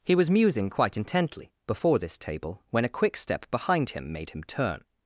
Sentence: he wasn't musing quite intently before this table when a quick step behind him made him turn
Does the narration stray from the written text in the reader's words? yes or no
yes